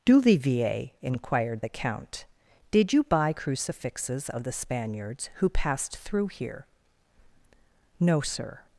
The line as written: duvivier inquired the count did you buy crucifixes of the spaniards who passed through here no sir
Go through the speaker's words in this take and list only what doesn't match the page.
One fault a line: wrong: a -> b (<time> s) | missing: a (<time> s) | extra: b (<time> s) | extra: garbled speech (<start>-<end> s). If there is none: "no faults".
no faults